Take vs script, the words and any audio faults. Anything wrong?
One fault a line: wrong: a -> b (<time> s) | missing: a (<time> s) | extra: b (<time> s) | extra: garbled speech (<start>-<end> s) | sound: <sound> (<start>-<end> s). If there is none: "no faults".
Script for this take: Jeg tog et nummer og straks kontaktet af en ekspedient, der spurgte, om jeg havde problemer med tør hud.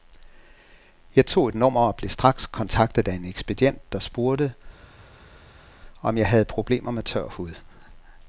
extra: blev (1.9 s)